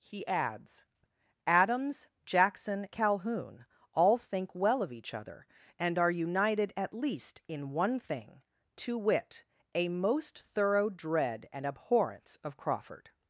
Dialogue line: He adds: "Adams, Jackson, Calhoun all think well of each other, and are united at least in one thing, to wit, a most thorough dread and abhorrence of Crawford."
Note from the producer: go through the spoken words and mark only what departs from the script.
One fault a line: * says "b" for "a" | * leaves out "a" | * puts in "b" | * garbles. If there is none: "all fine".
all fine